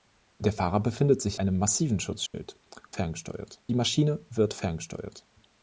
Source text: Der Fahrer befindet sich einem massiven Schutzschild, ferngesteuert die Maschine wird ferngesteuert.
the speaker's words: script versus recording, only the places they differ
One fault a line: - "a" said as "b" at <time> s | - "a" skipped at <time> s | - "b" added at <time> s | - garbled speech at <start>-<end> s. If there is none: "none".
none